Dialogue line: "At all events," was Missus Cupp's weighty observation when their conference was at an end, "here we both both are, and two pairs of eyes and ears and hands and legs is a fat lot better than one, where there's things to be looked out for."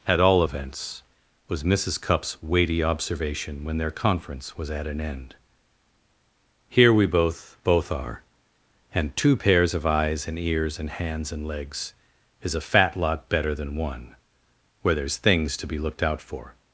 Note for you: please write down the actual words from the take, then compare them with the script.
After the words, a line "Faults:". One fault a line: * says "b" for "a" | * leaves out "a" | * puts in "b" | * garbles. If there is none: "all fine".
"At all events," was Missus Cupp's weighty observation when their conference was at an end, "here we both both are, and two pairs of eyes and ears and hands and legs is a fat lot better than one, where there's things to be looked out for."
Faults:
all fine